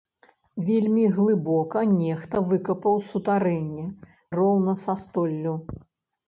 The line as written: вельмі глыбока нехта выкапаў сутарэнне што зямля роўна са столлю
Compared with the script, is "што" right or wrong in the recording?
wrong